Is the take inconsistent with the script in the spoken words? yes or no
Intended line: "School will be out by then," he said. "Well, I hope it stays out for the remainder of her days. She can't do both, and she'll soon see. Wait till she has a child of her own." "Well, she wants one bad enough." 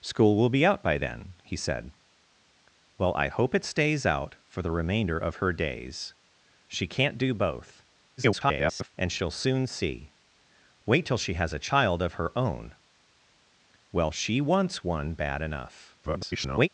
yes